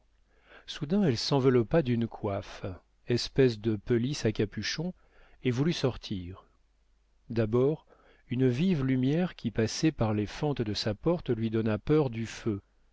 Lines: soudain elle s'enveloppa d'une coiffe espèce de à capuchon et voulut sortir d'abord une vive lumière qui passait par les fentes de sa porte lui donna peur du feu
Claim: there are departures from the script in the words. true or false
true